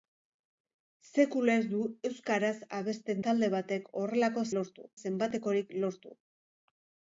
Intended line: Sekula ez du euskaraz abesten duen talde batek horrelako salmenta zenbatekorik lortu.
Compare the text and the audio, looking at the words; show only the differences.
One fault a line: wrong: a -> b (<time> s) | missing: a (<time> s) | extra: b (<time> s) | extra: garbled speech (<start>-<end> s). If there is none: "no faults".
missing: duen (3.2 s)
wrong: salmenta -> lortu (4.6 s)